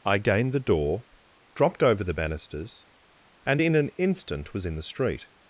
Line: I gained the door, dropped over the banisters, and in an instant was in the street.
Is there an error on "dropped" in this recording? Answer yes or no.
no